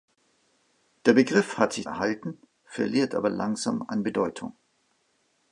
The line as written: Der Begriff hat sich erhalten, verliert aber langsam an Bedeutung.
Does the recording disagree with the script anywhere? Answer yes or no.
no